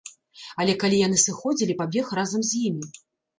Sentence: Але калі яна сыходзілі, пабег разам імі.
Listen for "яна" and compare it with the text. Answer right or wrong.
wrong